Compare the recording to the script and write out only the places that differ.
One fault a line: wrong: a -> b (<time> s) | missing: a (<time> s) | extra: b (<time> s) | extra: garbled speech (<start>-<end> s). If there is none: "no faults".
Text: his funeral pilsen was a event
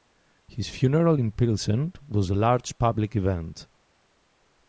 extra: in (1.2 s)
extra: large public (2.3 s)